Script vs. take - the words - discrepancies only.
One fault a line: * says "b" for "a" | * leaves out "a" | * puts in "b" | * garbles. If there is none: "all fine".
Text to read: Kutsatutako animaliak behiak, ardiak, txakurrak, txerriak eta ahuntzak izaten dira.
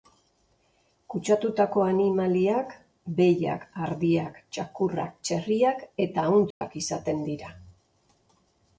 all fine